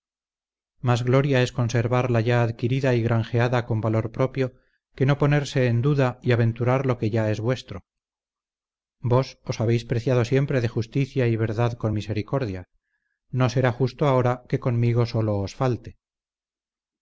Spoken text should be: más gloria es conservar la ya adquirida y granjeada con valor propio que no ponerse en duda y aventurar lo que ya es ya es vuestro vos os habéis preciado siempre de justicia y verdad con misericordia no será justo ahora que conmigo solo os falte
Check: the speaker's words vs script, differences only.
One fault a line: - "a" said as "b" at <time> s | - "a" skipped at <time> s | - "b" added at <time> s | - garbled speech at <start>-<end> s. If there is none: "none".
- "ya es" skipped at 7.4 s